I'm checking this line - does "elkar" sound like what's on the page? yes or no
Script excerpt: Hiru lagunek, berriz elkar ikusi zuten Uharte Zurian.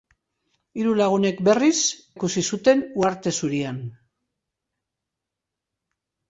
no